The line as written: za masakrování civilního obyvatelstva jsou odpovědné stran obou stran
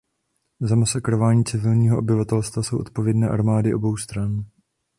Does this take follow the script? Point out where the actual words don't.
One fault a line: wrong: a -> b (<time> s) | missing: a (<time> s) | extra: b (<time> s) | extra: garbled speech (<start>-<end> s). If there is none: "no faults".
wrong: stran -> armády (3.3 s)